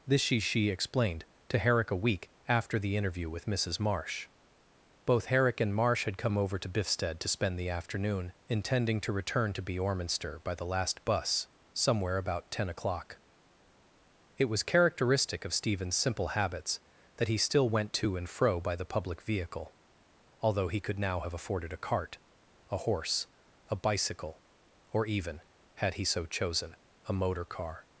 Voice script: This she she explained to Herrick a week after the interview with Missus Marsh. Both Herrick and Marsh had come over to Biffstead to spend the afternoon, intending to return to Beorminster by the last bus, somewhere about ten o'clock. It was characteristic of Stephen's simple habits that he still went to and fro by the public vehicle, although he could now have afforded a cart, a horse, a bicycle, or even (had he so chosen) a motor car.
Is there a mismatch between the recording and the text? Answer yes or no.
no